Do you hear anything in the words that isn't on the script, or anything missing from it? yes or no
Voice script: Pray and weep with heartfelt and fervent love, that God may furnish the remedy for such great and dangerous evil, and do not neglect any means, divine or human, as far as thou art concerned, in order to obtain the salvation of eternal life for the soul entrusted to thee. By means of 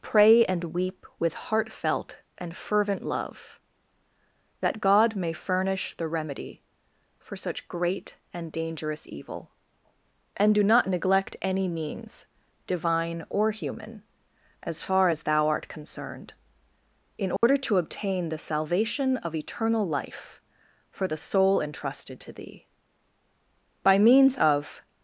no